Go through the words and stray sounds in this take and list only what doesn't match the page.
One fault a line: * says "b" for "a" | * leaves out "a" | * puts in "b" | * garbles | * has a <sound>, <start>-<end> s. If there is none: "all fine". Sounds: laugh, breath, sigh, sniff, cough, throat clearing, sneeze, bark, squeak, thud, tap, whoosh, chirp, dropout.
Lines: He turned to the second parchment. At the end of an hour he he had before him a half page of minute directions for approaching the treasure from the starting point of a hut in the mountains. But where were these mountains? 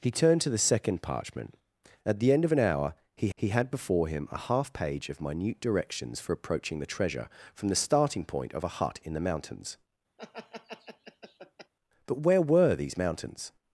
* has a laugh, 10.2-11.7 s